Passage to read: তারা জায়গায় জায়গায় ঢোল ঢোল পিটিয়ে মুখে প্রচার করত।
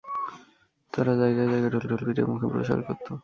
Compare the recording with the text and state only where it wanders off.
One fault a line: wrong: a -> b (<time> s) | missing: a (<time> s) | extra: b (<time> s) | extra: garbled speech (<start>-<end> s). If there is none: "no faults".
no faults